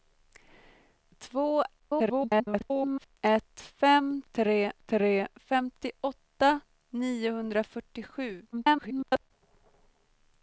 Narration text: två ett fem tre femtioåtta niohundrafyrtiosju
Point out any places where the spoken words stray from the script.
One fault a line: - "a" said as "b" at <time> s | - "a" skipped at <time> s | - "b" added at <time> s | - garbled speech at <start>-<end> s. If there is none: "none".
- garbled speech at 1.8-3.2 s
- "tre" added at 4.9 s
- garbled speech at 8.5-9.3 s